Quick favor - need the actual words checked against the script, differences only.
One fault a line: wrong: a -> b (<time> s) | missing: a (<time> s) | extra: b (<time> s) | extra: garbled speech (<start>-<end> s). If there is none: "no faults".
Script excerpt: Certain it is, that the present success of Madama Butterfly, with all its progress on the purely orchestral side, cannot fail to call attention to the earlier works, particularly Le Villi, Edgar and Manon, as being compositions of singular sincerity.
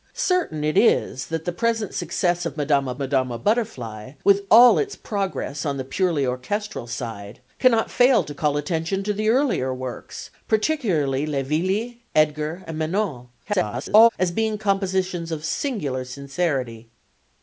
extra: Madama (3.0 s)
extra: garbled speech (13.5-14.1 s)